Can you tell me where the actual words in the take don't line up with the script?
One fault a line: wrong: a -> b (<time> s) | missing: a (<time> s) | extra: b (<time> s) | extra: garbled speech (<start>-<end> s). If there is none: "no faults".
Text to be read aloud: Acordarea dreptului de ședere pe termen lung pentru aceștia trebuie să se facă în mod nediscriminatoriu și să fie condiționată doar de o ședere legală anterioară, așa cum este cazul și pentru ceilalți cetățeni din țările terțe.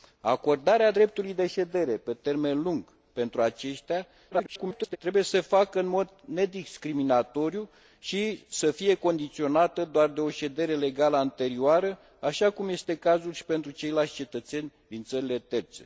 extra: garbled speech (4.3-5.0 s)